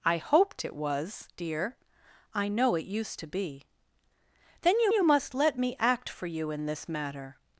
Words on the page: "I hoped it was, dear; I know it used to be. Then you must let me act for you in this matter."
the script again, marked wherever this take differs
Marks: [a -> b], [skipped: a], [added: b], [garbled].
"I hoped it was, dear; I know it used to be. Then you [added: you] must let me act for you in this matter."